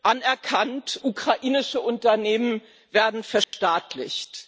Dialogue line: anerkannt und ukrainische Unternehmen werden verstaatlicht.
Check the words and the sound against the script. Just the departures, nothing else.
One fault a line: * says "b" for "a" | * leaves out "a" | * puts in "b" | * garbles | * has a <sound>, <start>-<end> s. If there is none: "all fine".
* leaves out "und"
* has a dropout, 3.4-3.5 s